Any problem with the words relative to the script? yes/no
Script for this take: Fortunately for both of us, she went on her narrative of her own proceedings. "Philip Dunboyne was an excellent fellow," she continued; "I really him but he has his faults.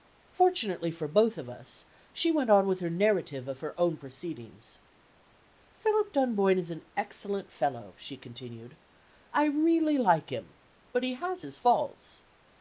yes